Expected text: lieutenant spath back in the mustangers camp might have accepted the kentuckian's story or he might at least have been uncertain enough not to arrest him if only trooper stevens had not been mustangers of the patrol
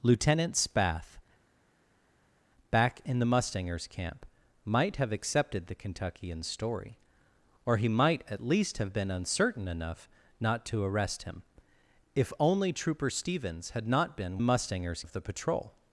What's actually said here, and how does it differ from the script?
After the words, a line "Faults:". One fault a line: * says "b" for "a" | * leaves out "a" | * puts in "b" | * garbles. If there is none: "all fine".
lieutenant spath back in the mustangers camp might have accepted the kentuckian's story or he might at least have been uncertain enough not to arrest him if only trooper stevens had not been mustangers of the patrol
Faults:
all fine